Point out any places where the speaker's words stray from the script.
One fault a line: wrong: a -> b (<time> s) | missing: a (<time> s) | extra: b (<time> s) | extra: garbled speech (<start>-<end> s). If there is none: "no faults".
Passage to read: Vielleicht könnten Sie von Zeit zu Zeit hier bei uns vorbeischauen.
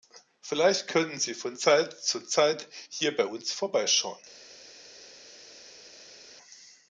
no faults